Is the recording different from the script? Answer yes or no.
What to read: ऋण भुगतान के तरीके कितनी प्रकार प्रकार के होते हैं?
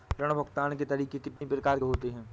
yes